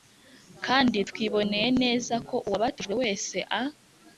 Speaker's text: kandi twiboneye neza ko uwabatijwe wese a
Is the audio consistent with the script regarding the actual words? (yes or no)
yes